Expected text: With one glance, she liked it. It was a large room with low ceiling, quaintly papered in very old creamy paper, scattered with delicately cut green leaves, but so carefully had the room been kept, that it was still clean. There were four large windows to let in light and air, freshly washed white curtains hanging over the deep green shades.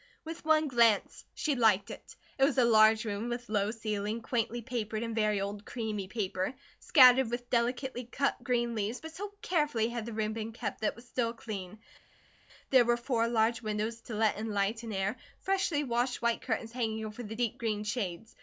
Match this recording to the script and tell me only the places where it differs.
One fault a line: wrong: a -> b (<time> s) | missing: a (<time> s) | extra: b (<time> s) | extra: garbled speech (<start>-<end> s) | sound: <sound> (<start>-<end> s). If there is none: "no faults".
no faults